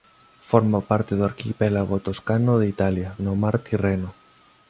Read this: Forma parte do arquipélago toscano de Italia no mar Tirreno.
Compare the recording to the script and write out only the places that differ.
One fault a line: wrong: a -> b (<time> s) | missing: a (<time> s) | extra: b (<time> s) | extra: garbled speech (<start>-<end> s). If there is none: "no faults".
no faults